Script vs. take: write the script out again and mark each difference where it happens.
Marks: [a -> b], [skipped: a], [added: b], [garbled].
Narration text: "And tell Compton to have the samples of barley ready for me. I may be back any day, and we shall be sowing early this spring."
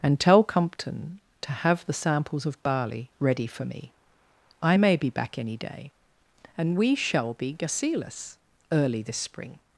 "And tell Compton to have the samples of barley ready for me. I may be back any day, and we shall be [sowing -> gasilus] early this spring."